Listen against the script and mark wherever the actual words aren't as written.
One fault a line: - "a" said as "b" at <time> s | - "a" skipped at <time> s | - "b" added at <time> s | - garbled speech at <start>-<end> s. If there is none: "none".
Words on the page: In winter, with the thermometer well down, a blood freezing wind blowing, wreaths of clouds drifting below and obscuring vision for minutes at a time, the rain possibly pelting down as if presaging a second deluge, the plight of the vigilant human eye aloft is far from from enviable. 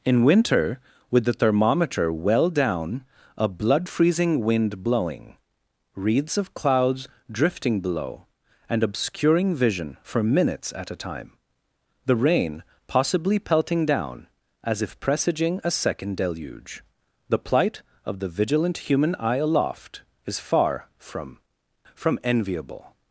none